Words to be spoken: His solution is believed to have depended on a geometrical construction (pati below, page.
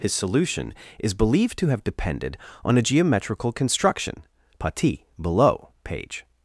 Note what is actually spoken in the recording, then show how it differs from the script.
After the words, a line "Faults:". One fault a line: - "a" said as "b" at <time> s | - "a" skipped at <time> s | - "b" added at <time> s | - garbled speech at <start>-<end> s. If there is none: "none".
His solution is believed to have depended on a geometrical construction (pati below, page.
Faults:
none